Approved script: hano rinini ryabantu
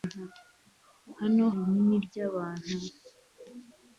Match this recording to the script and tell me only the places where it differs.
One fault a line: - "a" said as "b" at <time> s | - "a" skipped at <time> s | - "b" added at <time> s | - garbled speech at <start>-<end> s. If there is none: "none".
none